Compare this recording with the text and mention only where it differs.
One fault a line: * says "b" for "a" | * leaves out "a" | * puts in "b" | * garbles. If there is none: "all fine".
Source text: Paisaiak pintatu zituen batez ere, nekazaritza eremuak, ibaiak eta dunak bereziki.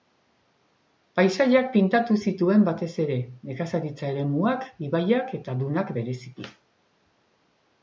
all fine